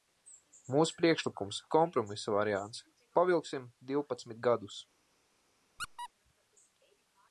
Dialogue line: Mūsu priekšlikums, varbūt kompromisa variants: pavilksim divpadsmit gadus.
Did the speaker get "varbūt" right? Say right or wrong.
wrong